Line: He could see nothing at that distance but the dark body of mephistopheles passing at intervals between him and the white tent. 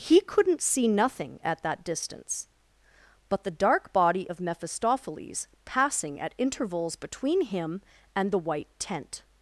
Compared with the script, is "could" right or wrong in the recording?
wrong